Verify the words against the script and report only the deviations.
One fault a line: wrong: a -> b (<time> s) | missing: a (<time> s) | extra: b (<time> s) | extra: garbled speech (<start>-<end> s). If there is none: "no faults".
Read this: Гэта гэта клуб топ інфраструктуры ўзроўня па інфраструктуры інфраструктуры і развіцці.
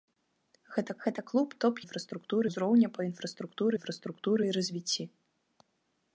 no faults